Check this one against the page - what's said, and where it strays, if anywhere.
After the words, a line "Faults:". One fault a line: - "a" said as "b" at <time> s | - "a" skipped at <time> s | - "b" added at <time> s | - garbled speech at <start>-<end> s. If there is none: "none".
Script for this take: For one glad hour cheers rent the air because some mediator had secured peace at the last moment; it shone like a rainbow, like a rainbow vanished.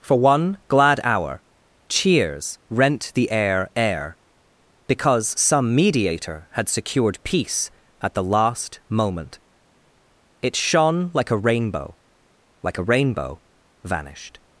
For one glad hour cheers rent the air air because some mediator had secured peace at the last moment; it shone like a rainbow, like a rainbow vanished.
Faults:
- "air" added at 3.8 s